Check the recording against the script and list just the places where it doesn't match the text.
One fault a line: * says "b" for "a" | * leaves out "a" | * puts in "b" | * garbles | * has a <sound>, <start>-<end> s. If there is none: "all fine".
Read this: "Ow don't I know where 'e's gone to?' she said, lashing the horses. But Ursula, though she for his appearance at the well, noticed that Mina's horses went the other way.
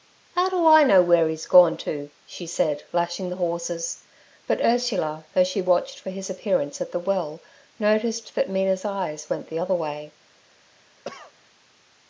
* says "do" for "don't"
* puts in "watched"
* says "eyes" for "horses"
* has a cough, 11.0-11.3 s